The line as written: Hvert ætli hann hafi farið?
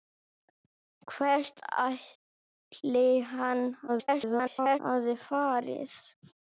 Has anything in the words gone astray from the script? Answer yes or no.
yes